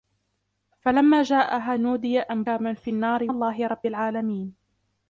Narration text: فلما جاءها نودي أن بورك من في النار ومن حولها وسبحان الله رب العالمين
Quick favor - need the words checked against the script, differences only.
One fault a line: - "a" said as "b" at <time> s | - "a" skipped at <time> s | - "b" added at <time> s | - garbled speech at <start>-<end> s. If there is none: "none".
- "بورك" skipped at 2.4 s
- "ومن حولها وسبحان" skipped at 3.3 s